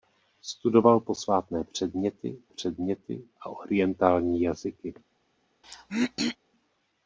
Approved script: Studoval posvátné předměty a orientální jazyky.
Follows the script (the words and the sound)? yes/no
no